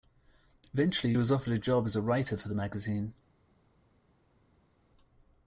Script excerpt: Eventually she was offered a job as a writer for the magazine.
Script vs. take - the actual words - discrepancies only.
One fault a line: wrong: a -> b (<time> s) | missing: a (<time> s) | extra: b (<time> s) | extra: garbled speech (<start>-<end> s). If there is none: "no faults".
missing: she (1.1 s)